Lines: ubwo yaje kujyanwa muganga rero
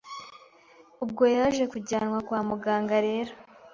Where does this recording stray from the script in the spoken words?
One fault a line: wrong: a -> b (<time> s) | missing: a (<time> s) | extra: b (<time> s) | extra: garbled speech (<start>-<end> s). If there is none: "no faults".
extra: kwa (2.3 s)